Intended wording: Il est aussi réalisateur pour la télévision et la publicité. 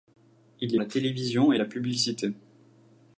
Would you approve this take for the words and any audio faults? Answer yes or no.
no